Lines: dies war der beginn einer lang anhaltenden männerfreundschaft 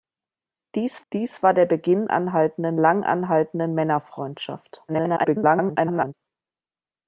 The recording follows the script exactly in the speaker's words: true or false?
false